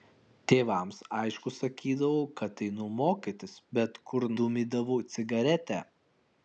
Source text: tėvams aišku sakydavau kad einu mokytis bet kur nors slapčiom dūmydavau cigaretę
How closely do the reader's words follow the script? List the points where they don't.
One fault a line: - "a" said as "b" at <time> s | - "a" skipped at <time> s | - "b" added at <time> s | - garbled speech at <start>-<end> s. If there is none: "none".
- "nors slapčiom" skipped at 4.3 s